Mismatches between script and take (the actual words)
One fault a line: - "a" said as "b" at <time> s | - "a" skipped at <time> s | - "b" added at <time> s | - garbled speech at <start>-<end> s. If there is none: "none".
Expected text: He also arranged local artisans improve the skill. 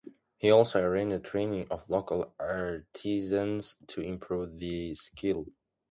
- "training of" added at 1.2 s
- "to" added at 3.9 s